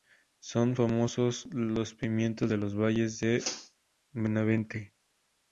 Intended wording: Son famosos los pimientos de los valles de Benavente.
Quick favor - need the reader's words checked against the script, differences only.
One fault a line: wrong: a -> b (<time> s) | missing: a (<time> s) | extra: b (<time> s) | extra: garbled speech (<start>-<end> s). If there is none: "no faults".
no faults